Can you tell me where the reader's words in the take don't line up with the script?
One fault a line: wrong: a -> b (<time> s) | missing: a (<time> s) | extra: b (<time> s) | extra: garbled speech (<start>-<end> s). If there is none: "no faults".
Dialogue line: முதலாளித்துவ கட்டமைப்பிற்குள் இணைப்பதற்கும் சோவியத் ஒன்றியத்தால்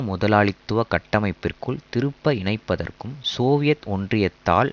extra: திருப்ப (1.9 s)